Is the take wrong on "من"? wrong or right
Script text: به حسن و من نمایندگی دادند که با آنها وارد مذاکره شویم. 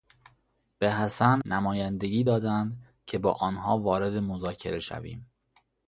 wrong